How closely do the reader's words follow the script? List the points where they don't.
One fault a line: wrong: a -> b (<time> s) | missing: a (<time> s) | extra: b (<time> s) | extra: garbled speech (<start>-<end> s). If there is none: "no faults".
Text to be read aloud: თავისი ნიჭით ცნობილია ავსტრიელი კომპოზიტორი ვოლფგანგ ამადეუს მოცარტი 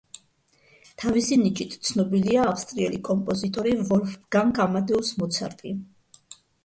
no faults